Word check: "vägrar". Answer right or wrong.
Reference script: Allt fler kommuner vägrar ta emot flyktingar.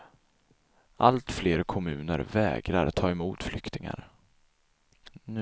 right